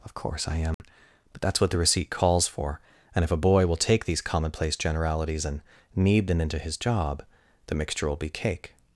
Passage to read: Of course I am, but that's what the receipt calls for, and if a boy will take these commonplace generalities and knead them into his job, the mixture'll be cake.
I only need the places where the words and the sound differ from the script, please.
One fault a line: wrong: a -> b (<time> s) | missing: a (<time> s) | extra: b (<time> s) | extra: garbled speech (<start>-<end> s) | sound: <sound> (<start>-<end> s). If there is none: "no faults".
sound: dropout (0.7-0.8 s)